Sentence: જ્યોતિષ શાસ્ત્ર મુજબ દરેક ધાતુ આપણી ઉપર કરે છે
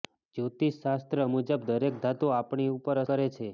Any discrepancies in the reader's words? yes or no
no